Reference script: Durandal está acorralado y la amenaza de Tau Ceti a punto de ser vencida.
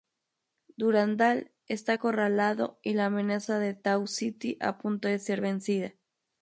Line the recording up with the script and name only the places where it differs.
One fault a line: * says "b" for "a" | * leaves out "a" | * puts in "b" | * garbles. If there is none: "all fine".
all fine